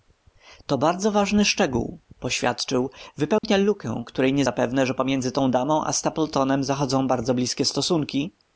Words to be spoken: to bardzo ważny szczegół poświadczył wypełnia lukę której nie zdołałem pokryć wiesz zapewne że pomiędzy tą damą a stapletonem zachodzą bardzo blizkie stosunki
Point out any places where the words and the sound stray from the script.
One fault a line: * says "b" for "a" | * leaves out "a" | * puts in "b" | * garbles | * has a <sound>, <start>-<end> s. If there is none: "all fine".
* has a dropout, 3.4-3.4 s
* leaves out "zdołałem pokryć wiesz"